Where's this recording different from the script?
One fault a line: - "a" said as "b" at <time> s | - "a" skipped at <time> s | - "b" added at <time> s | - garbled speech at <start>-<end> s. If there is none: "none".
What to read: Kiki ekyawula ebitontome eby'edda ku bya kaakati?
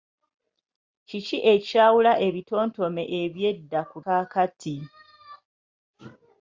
- "bya" skipped at 4.0 s